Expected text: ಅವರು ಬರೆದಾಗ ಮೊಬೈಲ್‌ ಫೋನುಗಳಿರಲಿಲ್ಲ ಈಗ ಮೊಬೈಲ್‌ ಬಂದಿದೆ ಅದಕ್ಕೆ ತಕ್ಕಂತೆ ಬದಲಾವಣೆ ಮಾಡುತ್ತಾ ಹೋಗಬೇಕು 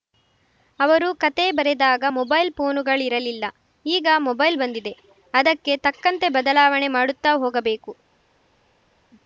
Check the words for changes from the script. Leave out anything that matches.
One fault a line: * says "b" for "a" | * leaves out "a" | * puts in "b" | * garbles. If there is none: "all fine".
* puts in "ಕತೆ"